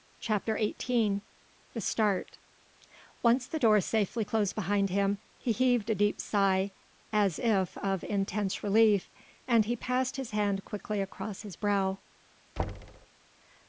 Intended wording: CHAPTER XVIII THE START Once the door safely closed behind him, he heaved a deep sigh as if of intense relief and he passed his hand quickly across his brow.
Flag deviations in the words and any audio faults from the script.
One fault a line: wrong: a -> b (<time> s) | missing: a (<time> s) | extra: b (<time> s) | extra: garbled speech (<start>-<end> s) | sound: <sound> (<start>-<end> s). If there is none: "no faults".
sound: thud (12.6-13.1 s)